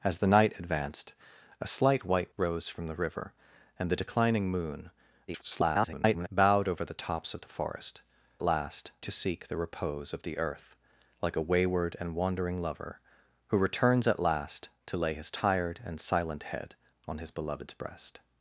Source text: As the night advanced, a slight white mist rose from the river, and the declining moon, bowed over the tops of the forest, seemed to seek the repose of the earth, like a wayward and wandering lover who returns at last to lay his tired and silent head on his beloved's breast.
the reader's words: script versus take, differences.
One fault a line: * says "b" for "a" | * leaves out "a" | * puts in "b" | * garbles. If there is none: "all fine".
* leaves out "mist"
* garbles
* says "last" for "seemed"